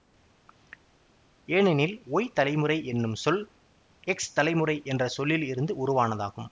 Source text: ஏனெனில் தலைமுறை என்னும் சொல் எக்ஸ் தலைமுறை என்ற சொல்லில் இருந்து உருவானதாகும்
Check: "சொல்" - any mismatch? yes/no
no